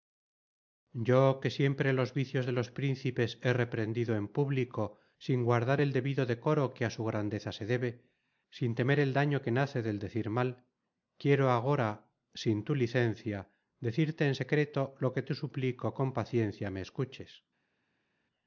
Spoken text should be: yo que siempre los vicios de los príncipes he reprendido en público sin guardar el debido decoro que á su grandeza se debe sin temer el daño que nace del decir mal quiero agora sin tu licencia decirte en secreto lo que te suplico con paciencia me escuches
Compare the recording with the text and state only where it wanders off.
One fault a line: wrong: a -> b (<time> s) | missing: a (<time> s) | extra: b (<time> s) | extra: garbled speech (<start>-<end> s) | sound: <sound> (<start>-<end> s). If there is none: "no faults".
no faults